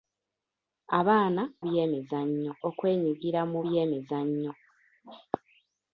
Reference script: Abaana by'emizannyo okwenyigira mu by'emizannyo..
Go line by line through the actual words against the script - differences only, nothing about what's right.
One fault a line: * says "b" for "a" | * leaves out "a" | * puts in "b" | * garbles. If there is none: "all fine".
all fine